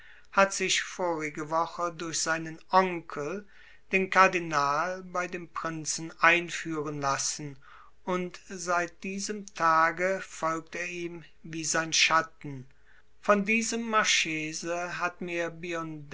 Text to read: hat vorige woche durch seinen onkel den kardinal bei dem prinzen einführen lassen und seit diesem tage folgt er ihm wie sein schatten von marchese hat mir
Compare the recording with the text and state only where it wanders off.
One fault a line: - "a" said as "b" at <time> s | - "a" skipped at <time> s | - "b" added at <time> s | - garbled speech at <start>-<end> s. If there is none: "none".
- "sich" added at 0.5 s
- "diesem" added at 13.5 s